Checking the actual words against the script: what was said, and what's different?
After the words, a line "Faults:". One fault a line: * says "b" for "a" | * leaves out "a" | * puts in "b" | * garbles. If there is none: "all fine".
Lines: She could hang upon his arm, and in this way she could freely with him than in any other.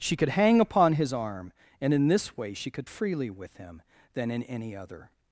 She could hang upon his arm, and in this way she could freely with him than in any other.
Faults:
all fine